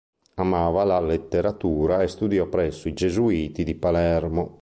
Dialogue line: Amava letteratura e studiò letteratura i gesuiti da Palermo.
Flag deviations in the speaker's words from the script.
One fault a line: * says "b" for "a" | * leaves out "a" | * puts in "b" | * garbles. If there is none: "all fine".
* puts in "la"
* says "presso" for "letteratura"
* says "di" for "da"